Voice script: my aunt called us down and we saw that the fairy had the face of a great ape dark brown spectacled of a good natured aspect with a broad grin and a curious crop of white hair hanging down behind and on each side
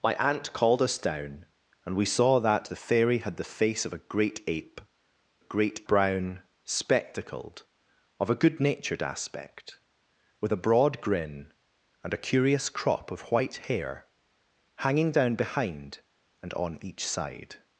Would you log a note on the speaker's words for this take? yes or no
yes